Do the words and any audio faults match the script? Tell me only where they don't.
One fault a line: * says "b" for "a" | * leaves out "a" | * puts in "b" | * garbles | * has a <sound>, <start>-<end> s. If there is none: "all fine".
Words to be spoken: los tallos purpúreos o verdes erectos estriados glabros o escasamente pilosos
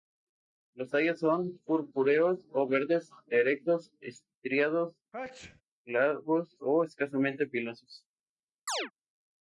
* puts in "son"
* has a sneeze, 5.1-5.6 s
* has a chirp, 8.7-8.9 s